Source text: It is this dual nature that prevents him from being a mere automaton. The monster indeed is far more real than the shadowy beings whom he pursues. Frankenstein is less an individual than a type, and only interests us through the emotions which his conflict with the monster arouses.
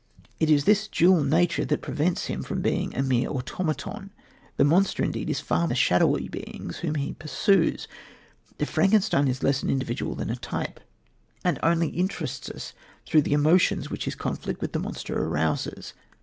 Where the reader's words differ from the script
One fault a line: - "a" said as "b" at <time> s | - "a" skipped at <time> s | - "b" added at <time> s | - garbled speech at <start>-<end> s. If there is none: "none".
- "more real than" skipped at 5.7 s